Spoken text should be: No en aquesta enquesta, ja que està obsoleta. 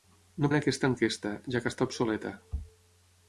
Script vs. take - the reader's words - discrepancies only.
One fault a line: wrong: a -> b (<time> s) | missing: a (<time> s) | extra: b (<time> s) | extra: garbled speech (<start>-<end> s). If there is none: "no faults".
no faults